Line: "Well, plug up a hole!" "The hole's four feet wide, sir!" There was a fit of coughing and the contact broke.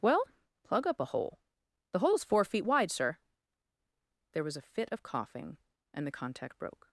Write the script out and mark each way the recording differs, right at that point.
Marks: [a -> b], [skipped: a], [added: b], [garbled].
"Well, plug up a hole!" "The hole's four feet wide, sir!" There was a fit of coughing and the contact broke.